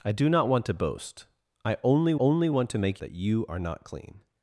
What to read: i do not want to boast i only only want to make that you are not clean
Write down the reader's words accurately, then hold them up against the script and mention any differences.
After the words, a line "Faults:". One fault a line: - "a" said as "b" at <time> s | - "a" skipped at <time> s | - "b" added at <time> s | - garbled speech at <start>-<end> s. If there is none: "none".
i do not want to boast i only only want to make that you are not clean
Faults:
none